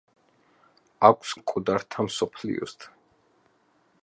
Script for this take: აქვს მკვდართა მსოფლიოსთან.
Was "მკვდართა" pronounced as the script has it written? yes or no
yes